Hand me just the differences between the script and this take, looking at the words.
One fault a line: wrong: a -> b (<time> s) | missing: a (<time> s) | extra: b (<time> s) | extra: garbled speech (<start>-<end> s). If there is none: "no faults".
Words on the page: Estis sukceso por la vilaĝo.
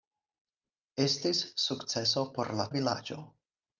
no faults